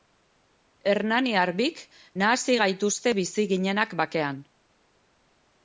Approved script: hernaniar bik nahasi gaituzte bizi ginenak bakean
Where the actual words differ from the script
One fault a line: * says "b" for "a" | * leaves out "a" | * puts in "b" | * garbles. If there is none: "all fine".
all fine